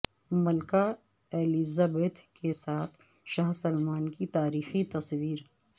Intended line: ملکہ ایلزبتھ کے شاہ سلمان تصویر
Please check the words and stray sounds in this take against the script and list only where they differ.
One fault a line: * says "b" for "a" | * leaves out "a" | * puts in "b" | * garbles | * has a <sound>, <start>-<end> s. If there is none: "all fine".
* puts in "ساتھ"
* puts in "کی تاریخی"